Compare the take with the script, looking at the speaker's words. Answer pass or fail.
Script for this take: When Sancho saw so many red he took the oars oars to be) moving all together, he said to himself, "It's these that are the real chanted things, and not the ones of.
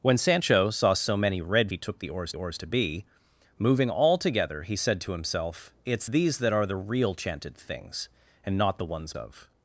pass